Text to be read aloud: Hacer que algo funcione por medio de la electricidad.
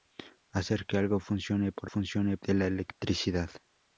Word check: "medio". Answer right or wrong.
wrong